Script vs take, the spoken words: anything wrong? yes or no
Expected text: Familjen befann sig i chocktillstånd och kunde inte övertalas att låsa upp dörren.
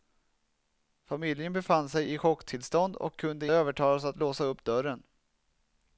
yes